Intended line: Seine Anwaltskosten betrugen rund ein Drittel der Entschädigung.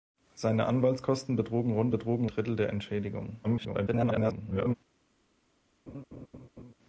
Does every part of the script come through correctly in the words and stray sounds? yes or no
no